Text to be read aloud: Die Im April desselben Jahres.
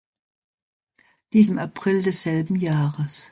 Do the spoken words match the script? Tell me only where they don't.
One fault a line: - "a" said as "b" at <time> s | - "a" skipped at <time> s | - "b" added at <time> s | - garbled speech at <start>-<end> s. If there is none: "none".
none